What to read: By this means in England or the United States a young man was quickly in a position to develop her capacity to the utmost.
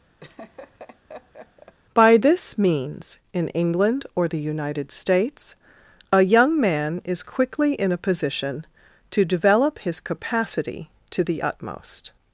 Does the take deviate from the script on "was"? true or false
true